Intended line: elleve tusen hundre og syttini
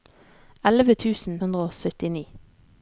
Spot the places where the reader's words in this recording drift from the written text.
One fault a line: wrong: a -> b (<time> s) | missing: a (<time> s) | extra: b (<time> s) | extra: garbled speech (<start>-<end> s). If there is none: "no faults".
no faults